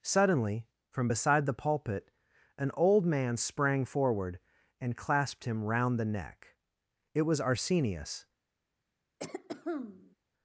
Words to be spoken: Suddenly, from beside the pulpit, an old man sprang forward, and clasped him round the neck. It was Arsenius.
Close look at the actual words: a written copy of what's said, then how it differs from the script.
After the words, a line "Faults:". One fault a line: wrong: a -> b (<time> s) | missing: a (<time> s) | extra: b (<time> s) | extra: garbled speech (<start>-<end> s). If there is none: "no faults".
Suddenly, from beside the pulpit, an old man sprang forward, and clasped him round the neck. It was Arsenius.
Faults:
no faults